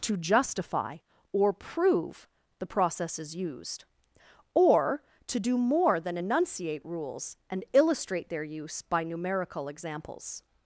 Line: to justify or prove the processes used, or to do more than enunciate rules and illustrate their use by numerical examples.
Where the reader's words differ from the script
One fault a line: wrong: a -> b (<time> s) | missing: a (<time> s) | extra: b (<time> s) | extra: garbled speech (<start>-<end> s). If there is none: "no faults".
no faults